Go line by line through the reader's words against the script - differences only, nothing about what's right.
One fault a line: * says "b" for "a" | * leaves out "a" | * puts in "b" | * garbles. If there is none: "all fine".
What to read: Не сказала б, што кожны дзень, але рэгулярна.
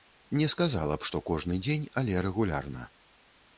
all fine